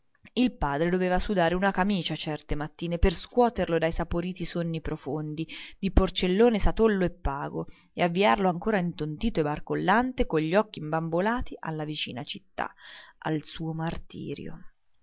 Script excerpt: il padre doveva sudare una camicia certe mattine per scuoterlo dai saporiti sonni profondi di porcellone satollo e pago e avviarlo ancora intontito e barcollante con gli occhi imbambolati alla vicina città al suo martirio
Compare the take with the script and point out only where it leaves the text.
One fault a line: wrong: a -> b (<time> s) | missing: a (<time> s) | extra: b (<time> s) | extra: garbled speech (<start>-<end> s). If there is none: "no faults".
no faults